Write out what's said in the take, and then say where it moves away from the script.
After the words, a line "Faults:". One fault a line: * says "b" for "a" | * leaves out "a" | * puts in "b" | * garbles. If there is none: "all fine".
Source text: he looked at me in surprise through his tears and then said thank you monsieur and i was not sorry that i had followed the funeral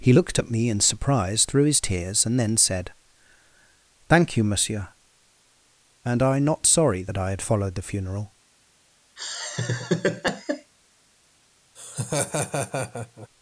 he looked at me in surprise through his tears and then said thank you monsieur and i not sorry that i had followed the funeral
Faults:
* leaves out "was"